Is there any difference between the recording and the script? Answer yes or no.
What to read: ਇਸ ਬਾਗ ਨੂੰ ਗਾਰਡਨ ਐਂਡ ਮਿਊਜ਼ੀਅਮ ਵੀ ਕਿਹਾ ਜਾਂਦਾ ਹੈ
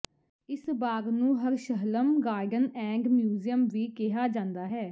yes